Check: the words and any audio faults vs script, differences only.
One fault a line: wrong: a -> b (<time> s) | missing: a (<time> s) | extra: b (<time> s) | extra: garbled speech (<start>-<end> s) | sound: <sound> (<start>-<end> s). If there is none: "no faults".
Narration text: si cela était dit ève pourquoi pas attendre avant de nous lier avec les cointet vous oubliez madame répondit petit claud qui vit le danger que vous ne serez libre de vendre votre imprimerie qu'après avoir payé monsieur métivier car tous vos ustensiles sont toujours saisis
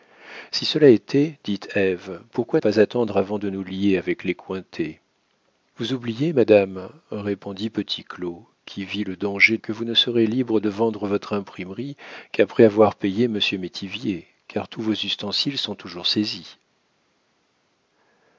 no faults